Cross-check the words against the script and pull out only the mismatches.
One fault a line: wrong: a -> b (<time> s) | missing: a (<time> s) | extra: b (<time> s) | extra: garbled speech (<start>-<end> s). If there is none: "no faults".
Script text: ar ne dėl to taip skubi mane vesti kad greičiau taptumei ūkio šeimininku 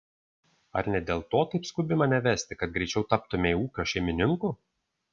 no faults